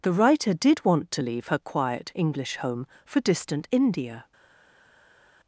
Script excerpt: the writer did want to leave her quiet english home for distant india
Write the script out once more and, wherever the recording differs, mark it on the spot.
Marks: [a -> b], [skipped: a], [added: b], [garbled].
the writer did want to leave her quiet english home for distant india